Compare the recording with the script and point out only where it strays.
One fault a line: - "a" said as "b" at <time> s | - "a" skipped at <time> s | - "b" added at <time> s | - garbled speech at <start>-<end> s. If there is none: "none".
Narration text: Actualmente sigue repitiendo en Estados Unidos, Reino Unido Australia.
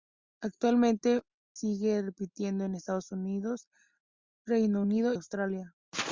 none